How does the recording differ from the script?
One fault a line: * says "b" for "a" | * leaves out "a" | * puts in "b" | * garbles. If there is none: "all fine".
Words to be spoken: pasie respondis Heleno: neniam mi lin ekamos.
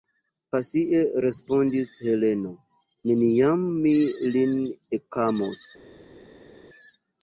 all fine